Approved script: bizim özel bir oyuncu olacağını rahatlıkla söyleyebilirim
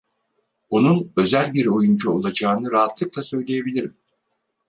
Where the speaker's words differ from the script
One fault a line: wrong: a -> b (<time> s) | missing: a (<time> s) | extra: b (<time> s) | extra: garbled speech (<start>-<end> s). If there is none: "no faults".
wrong: bizim -> onun (0.7 s)